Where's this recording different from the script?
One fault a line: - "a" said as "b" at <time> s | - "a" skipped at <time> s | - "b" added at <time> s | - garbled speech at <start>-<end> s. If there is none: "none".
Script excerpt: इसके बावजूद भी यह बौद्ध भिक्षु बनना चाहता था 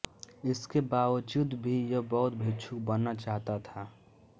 none